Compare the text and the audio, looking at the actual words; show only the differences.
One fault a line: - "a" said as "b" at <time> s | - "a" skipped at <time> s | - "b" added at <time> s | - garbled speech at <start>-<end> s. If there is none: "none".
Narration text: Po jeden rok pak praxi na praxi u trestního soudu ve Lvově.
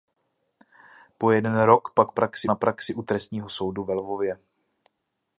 none